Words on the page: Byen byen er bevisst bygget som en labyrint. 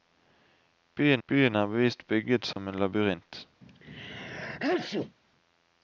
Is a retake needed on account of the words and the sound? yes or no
yes